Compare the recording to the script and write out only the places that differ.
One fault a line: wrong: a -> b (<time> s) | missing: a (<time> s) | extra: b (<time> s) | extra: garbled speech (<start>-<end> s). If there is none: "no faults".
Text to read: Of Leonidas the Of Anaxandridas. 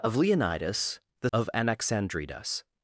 no faults